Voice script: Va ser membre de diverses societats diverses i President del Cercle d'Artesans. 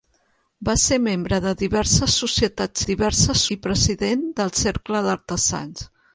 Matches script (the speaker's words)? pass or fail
pass